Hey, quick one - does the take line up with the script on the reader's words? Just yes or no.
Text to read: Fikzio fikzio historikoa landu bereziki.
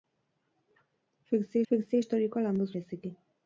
yes